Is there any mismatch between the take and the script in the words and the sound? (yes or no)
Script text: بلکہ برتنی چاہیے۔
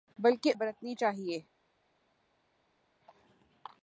no